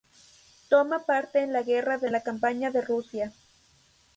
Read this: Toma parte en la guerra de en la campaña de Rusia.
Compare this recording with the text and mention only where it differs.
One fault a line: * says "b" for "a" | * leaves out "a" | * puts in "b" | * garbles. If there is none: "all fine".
all fine